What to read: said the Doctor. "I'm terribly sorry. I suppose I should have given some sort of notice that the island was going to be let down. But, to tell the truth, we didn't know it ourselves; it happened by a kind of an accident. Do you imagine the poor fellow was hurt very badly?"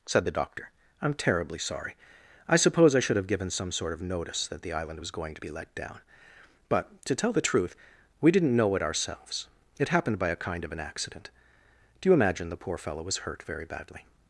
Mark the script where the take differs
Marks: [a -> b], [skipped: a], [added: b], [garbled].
said the Doctor. "I'm terribly sorry. I suppose I should have given some sort of notice that the island was going to be let down. But, to tell the truth, we didn't know it ourselves; it happened by a kind of an accident. Do you imagine the poor fellow was hurt very badly?"